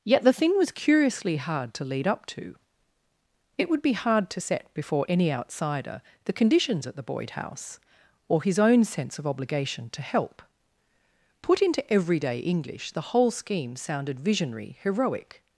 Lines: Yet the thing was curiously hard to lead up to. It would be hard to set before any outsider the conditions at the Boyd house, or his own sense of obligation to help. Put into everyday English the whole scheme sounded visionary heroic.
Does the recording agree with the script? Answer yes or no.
yes